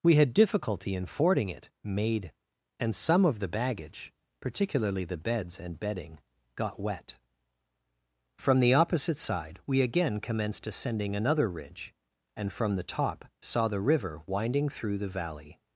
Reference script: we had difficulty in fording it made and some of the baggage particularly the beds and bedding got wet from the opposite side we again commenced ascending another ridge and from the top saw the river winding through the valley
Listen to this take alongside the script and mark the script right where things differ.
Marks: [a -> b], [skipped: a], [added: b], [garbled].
we had difficulty in fording it made and some of the baggage particularly the beds and bedding got wet from the opposite side we again commenced ascending another ridge and from the top saw the river winding through the valley